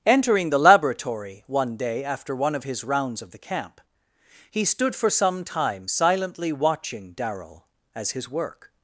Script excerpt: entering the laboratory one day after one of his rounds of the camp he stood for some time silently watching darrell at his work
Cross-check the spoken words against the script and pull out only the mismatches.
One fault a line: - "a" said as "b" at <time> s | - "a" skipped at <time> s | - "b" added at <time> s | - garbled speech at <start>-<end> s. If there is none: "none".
- "at" said as "as" at 7.9 s